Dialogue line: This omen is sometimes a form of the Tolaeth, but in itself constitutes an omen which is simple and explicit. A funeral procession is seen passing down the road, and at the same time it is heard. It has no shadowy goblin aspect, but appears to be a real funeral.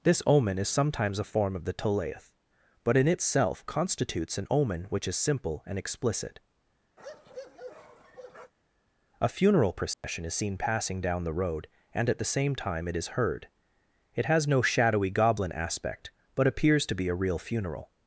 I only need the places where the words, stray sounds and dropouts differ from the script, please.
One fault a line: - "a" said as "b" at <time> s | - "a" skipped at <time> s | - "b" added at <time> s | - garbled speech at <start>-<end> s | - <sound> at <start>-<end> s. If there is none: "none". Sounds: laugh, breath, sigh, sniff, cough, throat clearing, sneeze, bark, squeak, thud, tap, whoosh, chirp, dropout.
- bark at 7.0-8.5 s
- dropout at 9.9-10.0 s